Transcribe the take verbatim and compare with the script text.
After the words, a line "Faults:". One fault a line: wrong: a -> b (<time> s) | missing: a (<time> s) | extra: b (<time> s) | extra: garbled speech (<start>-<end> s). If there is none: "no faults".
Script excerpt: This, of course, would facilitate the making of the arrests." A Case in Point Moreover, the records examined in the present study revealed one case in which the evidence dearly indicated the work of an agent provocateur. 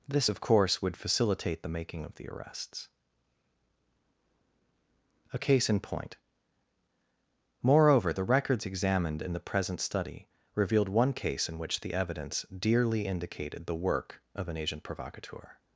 This, of course, would facilitate the making of the arrests." A Case in Point Moreover, the records examined in the present study revealed one case in which the evidence dearly indicated the work of an agent provocateur.
Faults:
no faults